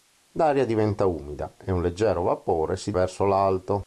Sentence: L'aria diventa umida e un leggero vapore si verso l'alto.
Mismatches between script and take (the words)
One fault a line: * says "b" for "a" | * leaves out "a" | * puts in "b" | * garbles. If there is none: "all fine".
all fine